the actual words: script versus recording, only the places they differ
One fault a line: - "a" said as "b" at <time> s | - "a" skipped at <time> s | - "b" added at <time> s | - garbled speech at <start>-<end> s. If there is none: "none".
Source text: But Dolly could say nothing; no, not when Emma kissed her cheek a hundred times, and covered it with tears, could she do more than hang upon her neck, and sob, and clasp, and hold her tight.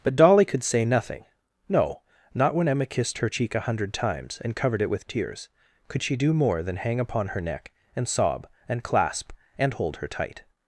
none